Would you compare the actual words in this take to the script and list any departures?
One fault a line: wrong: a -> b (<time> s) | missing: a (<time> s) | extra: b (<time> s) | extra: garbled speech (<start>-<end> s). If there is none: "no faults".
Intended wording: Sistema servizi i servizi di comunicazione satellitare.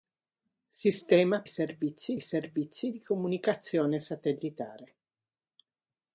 no faults